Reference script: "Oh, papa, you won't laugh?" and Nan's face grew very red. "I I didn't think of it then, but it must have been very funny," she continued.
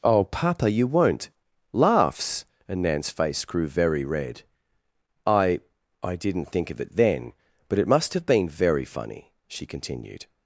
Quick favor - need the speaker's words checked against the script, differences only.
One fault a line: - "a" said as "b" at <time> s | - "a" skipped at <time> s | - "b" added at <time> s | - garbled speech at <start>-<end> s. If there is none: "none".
- "laugh" said as "laughs" at 1.7 s